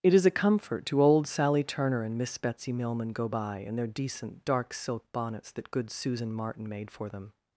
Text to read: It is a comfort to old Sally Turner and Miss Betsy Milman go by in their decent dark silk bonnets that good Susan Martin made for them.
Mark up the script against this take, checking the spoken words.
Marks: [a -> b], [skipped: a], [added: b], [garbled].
It is a comfort to old Sally Turner and Miss Betsy Milman go by in their decent dark silk bonnets that good Susan Martin made for them.